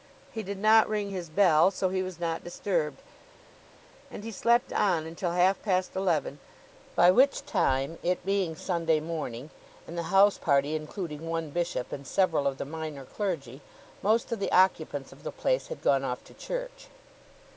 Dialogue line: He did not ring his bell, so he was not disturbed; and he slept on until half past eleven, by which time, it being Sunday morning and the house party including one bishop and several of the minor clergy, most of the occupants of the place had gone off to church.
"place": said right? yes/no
yes